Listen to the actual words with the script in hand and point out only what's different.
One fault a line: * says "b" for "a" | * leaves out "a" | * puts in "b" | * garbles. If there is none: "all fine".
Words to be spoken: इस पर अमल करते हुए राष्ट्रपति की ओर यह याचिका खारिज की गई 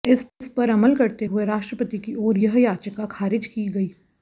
all fine